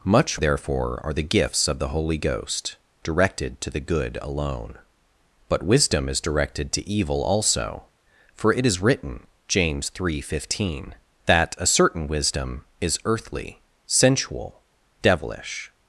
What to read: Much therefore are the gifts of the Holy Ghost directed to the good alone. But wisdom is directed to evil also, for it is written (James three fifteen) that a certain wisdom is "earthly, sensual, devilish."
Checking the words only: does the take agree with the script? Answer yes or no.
yes